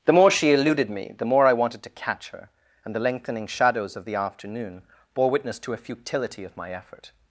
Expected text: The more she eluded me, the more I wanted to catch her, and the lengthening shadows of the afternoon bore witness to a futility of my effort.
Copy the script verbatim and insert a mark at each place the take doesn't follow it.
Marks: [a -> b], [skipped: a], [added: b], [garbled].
The more she eluded me, the more I wanted to catch her, and the lengthening shadows of the afternoon bore witness to a futility of my effort.